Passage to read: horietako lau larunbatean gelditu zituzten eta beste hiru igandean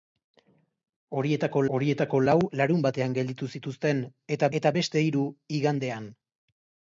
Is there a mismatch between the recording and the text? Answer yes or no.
yes